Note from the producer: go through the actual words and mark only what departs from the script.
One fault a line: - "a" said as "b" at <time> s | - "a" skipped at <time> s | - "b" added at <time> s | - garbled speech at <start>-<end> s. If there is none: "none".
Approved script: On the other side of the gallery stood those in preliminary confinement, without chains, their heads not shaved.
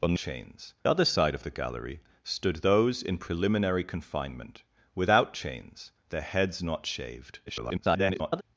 - "the" said as "chains" at 0.1 s
- garbled speech at 7.5-8.4 s